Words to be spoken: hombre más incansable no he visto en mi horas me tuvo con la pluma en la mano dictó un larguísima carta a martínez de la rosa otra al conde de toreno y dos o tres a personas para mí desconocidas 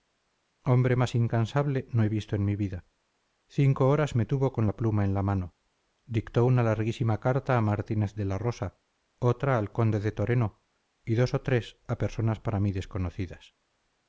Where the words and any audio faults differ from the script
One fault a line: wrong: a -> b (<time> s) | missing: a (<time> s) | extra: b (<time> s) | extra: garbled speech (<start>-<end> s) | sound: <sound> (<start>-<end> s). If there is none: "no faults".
extra: vida cinco (2.5 s)
wrong: un -> una (6.4 s)